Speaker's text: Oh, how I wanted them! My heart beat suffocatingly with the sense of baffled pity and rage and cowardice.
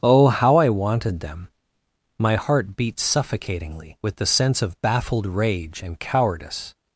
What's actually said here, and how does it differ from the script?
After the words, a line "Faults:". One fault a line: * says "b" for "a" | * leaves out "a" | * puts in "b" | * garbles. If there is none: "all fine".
Oh, how I wanted them! My heart beat suffocatingly with the sense of baffled rage and cowardice.
Faults:
* leaves out "pity and"